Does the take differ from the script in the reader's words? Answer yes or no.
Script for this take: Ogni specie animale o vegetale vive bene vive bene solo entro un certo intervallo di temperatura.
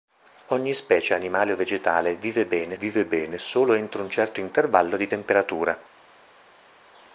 no